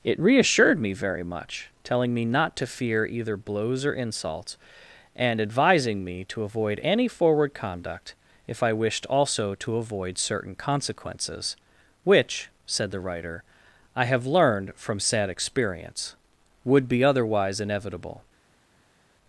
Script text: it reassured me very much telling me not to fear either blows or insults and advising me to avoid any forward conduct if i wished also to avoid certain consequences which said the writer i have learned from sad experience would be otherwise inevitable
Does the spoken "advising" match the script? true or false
true